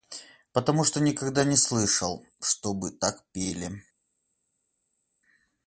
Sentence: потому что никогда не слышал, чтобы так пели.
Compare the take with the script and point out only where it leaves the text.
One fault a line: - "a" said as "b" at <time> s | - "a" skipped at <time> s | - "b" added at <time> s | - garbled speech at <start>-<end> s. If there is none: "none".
none